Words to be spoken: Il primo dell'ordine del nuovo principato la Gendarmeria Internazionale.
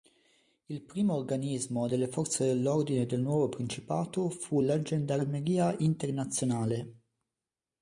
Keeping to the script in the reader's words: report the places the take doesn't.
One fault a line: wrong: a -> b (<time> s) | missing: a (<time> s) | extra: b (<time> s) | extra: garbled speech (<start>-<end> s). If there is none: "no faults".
extra: organismo delle forze (1.1 s)
extra: fu (4.3 s)